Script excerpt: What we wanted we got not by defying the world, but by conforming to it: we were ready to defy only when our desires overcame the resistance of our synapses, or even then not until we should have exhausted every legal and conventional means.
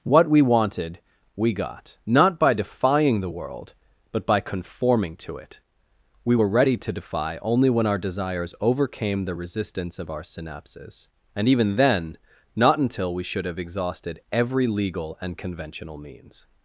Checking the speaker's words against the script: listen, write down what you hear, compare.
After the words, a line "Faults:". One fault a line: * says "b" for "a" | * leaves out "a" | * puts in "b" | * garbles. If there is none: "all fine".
What we wanted we got not by defying the world, but by conforming to it: we were ready to defy only when our desires overcame the resistance of our synapses, and even then not until we should have exhausted every legal and conventional means.
Faults:
* says "and" for "or"